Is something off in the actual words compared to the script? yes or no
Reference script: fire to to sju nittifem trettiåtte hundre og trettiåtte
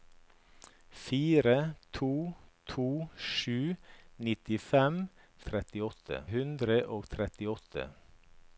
no